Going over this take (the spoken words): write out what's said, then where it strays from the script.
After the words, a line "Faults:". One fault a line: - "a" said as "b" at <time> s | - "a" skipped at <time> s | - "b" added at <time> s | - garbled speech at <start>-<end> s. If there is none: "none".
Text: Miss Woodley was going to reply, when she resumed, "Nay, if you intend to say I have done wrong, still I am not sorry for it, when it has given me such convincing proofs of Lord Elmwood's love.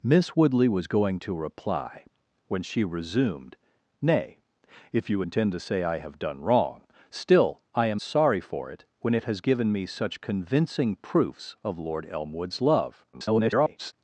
Miss Woodley was going to reply, when she resumed, "Nay, if you intend to say I have done wrong, still I am sorry for it, when it has given me such convincing proofs of Lord Elmwood's love. [garbled]
Faults:
- "not" skipped at 8.0 s
- garbled speech at 13.1-13.9 s